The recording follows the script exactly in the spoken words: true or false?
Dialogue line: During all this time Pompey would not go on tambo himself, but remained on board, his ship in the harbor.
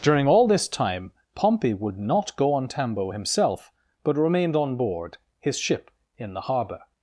true